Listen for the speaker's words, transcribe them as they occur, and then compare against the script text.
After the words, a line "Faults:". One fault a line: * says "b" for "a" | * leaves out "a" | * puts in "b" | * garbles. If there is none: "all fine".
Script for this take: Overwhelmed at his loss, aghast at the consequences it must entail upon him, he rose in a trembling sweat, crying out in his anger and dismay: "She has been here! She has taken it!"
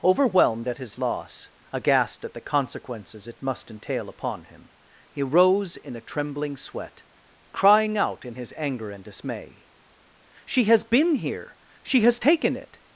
Overwhelmed at his loss, aghast at the consequences it must entail upon him, he rose in a trembling sweat, crying out in his anger and dismay: "She has been here! She has taken it!"
Faults:
all fine